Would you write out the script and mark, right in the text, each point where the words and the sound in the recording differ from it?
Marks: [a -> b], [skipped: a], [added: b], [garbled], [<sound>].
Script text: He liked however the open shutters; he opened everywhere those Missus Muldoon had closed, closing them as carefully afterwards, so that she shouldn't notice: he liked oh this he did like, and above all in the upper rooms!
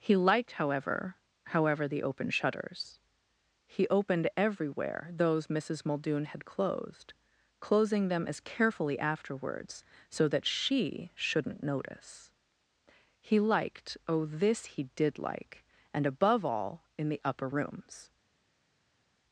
He liked however [added: however] the open shutters; he opened everywhere those Missus Muldoon had closed, closing them as carefully afterwards, so that she shouldn't notice: he liked oh this he did like, and above all in the upper rooms!